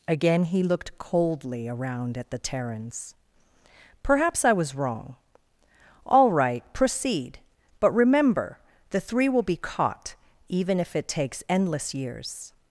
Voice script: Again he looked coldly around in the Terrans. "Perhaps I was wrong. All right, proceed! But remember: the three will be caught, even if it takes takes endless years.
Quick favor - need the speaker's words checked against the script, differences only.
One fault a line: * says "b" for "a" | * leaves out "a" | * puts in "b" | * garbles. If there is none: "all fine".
* says "at" for "in"
* leaves out "takes"